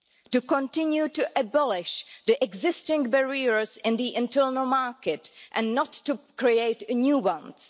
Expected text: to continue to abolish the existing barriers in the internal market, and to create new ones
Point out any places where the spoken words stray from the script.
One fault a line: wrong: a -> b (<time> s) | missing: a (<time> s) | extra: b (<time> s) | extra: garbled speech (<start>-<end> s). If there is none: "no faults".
extra: not (5.7 s)